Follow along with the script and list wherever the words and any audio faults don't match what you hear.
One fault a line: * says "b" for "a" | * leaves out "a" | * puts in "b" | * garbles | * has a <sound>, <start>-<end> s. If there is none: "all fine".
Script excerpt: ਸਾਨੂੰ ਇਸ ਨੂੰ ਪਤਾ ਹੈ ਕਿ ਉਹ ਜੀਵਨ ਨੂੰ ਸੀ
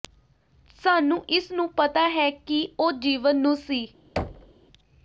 * has a thud, 4.2-4.5 s